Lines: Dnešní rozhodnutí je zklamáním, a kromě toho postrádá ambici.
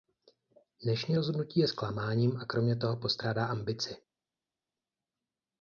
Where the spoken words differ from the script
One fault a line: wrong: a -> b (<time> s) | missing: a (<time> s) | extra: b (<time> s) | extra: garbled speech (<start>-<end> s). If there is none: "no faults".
no faults